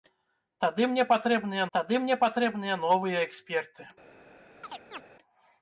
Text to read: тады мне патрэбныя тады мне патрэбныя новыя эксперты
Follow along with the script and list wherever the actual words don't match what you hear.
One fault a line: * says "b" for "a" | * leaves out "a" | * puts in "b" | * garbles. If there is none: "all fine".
all fine